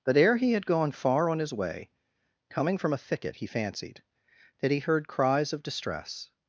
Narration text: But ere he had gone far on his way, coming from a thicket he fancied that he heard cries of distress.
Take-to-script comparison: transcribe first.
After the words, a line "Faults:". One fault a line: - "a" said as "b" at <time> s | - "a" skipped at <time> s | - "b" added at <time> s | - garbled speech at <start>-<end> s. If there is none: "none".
But ere he had gone far on his way, coming from a thicket he fancied that he heard cries of distress.
Faults:
none